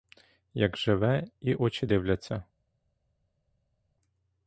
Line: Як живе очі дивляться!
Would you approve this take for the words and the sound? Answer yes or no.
no